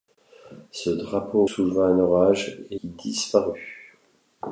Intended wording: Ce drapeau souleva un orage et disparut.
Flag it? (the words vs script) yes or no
no